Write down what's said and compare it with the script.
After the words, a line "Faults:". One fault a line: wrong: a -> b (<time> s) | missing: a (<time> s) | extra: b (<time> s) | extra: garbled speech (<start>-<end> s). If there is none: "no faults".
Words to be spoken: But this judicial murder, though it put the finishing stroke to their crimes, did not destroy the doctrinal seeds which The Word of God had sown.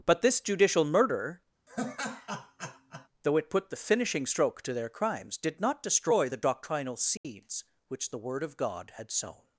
But this judicial murder, though it put the finishing stroke to their crimes, did not destroy the doctrinal seeds which The Word of God had sown.
Faults:
no faults